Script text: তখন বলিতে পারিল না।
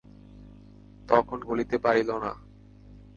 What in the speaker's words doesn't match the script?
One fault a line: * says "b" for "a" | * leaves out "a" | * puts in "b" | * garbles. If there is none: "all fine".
all fine